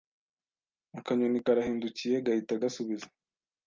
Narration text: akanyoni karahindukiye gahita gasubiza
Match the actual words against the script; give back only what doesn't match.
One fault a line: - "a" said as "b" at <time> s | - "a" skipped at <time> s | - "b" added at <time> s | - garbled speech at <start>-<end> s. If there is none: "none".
none